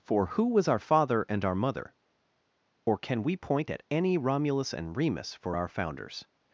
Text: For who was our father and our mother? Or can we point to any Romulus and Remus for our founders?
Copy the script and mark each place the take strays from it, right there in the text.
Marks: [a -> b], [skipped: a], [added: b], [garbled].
For who was our father and our mother? Or can we point [to -> at] any Romulus and Remus for our founders?